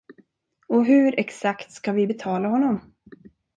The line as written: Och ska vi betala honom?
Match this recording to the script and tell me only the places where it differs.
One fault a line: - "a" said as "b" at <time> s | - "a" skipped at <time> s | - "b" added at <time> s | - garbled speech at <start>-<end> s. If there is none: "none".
- "hur exakt" added at 0.8 s